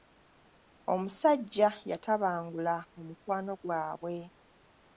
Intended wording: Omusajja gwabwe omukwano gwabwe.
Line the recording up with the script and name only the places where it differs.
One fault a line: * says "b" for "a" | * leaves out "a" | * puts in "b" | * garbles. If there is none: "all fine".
* says "yatabangula" for "gwabwe"